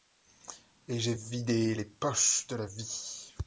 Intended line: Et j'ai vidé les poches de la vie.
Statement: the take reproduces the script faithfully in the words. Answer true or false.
true